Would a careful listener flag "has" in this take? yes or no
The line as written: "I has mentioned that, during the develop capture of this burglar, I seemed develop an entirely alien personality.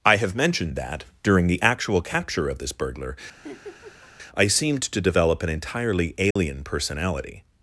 yes